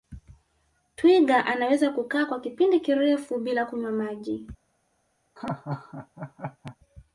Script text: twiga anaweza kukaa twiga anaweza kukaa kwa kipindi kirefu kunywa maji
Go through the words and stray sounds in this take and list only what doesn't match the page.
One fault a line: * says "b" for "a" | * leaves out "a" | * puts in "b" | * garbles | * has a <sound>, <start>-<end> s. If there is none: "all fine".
* leaves out "twiga anaweza kukaa"
* puts in "bila"
* has a laugh, 5.4-6.8 s